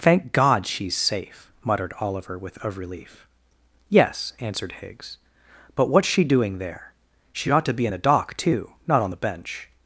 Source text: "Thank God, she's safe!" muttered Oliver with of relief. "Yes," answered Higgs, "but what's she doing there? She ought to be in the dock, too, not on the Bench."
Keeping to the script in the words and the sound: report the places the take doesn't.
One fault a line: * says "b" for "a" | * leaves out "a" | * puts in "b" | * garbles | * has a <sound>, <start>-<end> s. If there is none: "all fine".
all fine